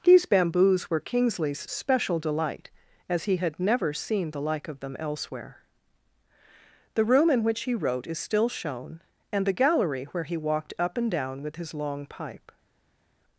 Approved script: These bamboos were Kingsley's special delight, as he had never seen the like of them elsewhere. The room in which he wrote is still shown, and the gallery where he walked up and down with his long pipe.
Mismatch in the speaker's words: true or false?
false